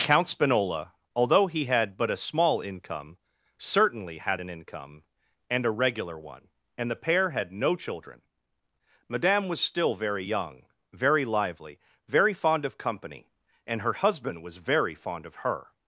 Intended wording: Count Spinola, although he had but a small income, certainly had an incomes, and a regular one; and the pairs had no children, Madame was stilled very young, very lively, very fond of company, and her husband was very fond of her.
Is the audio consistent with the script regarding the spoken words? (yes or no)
no